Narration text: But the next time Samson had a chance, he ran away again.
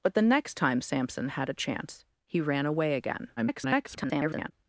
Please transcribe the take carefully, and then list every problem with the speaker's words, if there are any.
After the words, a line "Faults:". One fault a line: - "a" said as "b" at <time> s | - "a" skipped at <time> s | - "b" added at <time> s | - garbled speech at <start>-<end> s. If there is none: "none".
But the next time Samson had a chance, he ran away again. [garbled]
Faults:
- garbled speech at 3.4-4.5 s